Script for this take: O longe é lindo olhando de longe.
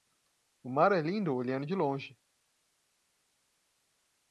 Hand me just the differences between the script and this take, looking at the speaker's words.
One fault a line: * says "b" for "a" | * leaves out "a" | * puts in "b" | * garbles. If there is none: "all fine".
* says "mar" for "longe"